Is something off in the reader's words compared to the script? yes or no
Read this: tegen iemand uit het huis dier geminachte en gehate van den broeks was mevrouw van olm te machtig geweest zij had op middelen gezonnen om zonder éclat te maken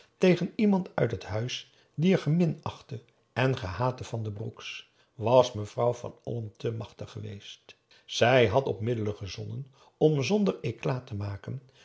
no